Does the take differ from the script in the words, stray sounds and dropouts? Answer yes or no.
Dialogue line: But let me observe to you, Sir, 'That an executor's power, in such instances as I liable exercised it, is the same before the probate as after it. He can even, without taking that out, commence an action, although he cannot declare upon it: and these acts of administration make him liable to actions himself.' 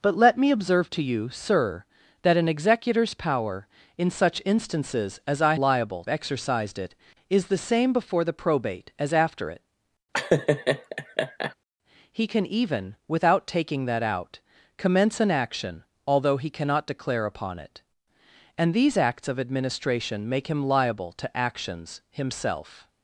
yes